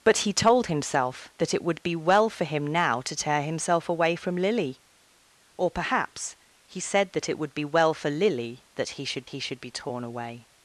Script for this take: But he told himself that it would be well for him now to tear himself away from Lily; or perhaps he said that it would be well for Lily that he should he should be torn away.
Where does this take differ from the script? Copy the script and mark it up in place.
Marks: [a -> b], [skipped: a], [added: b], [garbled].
But he told himself that it would be well for him now to tear himself away from Lily; or perhaps he said that it would be well for Lily that he should he should be torn away.